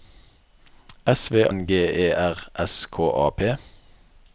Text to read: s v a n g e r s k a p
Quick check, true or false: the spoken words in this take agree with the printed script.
false